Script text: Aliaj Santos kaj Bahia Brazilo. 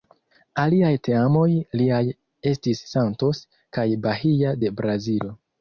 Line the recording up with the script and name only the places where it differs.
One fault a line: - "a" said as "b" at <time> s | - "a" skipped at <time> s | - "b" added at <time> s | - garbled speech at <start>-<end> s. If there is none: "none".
- "teamoj liaj estis" added at 1.1 s
- "de" added at 4.6 s